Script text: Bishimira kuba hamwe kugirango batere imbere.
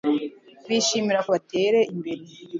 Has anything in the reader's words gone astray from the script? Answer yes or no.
yes